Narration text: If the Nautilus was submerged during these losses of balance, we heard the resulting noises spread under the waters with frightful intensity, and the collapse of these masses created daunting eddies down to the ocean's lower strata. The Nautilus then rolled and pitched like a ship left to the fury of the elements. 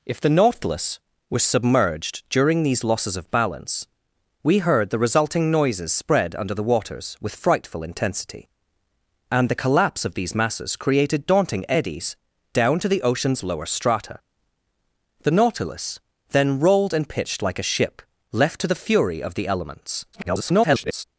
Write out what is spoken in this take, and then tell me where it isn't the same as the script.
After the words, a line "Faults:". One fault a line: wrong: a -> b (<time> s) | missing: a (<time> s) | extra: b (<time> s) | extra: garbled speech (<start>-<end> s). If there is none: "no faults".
If the Nautilus was submerged during these losses of balance, we heard the resulting noises spread under the waters with frightful intensity, and the collapse of these masses created daunting eddies down to the ocean's lower strata. The Nautilus then rolled and pitched like a ship left to the fury of the elements. [garbled]
Faults:
extra: garbled speech (20.1-21.0 s)